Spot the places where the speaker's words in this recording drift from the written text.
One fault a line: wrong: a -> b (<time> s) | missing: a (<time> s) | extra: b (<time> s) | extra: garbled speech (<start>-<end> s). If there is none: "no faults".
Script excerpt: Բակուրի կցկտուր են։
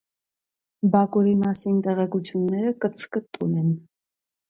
extra: մասին տեղեկությունները (1.4 s)